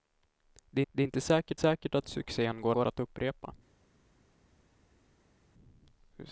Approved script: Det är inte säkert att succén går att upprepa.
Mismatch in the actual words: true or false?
true